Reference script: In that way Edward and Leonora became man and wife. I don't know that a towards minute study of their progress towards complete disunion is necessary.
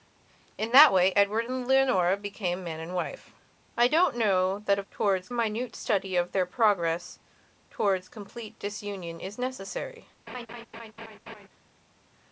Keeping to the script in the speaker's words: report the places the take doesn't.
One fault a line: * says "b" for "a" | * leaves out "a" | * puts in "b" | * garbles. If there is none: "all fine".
all fine